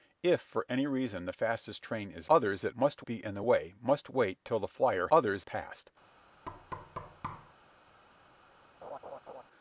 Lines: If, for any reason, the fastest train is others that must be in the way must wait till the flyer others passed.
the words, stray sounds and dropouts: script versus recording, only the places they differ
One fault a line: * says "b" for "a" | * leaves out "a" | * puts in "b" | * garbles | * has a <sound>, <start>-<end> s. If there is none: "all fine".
* has a thud, 6.4-7.5 s
* has a laugh, 8.8-9.4 s